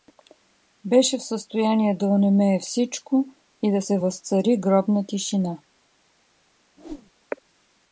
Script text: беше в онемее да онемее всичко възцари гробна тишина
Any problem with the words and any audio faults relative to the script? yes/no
yes